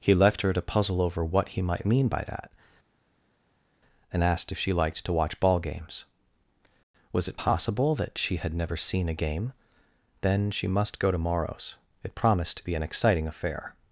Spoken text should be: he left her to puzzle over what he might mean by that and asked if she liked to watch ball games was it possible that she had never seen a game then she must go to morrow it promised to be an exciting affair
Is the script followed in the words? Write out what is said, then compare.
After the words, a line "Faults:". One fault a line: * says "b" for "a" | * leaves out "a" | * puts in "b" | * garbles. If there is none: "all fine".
he left her to puzzle over what he might mean by that and asked if she liked to watch ball games was it possible that she had never seen a game then she must go to morrows it promised to be an exciting affair
Faults:
* says "morrows" for "morrow"